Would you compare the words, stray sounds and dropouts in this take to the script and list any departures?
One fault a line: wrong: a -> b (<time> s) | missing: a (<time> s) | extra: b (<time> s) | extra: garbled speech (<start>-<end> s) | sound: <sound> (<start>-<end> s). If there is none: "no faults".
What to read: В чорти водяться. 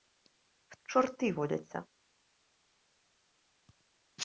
no faults